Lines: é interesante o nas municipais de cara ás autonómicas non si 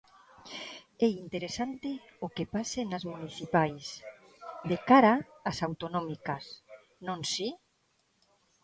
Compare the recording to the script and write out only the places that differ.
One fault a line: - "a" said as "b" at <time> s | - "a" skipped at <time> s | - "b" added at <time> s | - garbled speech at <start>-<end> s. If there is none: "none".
- "que pase" added at 2.4 s